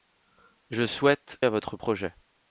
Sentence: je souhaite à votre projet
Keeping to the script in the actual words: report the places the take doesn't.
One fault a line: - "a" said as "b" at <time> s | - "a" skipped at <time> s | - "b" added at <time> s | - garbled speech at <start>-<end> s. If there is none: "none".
none